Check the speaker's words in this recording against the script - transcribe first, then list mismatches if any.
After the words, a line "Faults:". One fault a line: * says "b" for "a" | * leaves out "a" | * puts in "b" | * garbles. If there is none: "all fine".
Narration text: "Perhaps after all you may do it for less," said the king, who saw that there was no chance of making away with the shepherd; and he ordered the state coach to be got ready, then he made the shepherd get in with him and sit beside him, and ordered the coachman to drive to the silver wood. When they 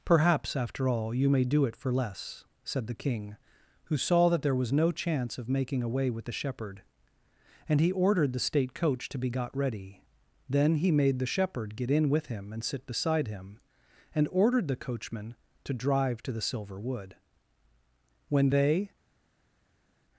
"Perhaps after all you may do it for less," said the king, who saw that there was no chance of making away with the shepherd; and he ordered the state coach to be got ready, then he made the shepherd get in with him and sit beside him, and ordered the coachman to drive to the silver wood. When they
Faults:
all fine